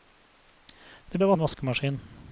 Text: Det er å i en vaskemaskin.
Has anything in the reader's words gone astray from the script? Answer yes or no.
no